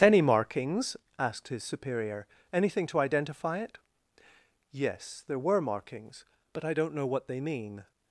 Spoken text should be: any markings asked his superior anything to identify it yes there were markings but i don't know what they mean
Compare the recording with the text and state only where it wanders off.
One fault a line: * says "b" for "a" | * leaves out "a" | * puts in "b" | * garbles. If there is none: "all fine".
all fine